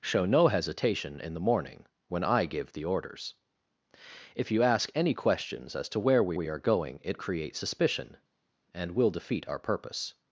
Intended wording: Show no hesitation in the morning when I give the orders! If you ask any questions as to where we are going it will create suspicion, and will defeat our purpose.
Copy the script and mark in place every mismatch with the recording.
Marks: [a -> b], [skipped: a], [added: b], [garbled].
Show no hesitation in the morning when I give the orders! If you ask any questions as to where we [added: we] are going it [skipped: will] create suspicion, and will defeat our purpose.